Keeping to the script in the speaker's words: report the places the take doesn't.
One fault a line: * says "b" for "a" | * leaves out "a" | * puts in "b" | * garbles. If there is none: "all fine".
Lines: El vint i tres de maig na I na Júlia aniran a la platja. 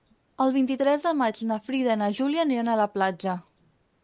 * puts in "Frida"